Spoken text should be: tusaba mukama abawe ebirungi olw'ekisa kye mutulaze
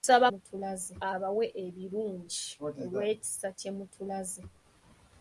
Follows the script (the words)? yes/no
no